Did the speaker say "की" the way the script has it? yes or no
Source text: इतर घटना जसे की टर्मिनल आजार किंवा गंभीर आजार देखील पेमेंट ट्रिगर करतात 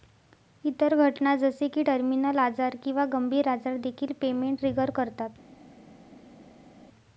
yes